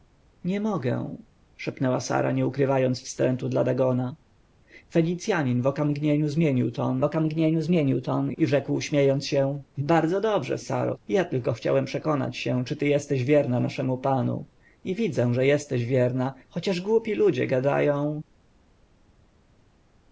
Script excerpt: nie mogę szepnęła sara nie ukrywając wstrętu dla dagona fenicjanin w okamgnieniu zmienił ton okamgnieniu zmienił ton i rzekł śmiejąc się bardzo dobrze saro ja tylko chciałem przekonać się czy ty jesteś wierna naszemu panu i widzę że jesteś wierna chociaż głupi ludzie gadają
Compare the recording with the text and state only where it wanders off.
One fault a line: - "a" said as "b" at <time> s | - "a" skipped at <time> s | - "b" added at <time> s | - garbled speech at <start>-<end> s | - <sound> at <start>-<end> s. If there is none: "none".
none